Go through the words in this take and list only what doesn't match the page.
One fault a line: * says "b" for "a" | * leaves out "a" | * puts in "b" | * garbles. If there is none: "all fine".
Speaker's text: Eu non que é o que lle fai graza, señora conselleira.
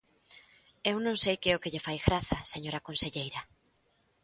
* puts in "sei"